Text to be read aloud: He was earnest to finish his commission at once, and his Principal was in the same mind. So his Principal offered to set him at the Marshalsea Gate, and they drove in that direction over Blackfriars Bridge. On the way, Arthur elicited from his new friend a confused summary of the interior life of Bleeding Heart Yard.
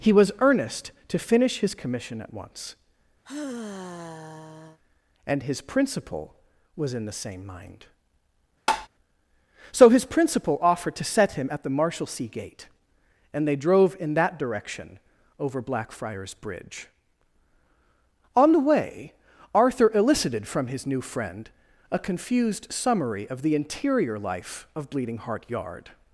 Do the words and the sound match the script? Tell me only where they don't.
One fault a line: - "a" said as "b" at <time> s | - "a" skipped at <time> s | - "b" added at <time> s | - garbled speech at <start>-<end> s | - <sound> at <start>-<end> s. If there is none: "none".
- sigh at 3.2-4.8 s
- tap at 8.7-8.9 s